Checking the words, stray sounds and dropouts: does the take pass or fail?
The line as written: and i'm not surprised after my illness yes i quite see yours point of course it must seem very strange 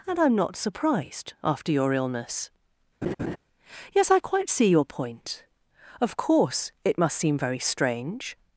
fail